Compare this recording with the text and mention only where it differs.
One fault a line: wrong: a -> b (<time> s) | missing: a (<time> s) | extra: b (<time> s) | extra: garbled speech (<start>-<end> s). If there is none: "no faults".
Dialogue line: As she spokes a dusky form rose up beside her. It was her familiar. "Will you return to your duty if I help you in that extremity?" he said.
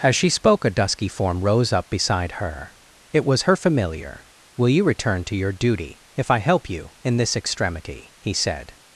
wrong: spokes -> spoke (0.3 s)
wrong: that -> this (7.2 s)